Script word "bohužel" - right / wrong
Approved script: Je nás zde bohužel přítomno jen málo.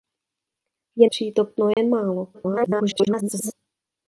wrong